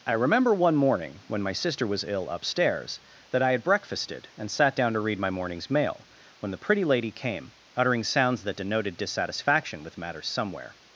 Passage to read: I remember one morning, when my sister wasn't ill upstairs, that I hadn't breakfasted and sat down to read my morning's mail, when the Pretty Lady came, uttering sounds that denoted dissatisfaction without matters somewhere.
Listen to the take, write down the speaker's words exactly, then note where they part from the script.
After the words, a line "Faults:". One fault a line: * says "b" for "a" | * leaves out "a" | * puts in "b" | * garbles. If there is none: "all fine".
I remember one morning, when my sister was ill upstairs, that I had breakfasted and sat down to read my morning's mail, when the Pretty Lady came, uttering sounds that denoted dissatisfaction with matters somewhere.
Faults:
* says "was" for "wasn't"
* says "had" for "hadn't"
* says "with" for "without"